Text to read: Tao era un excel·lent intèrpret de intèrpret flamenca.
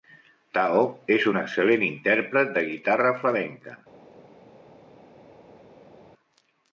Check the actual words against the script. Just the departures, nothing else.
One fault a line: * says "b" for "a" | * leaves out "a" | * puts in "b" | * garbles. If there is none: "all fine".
* says "és" for "era"
* says "guitarra" for "intèrpret"